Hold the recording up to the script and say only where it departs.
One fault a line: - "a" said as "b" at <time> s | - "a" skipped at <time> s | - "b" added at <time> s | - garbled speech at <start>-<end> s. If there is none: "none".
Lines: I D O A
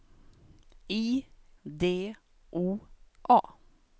none